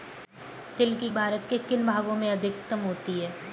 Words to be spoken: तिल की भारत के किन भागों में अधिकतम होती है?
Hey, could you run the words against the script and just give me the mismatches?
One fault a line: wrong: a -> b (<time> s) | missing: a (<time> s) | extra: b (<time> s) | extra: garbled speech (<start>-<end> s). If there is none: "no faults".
no faults